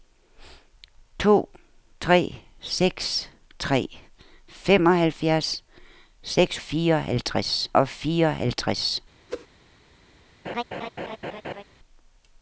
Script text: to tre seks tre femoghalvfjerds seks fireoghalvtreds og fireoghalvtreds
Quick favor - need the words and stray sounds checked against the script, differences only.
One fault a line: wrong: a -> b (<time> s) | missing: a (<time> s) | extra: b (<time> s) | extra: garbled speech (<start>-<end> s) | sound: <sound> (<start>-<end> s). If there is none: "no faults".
sound: whoosh (9.3-9.5 s)
sound: laugh (10.4-11.6 s)